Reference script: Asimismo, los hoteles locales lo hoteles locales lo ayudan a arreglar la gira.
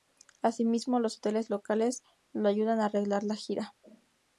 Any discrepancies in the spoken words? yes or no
yes